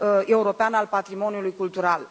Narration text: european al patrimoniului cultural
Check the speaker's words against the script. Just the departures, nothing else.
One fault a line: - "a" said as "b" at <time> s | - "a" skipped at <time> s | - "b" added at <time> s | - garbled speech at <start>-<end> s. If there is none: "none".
none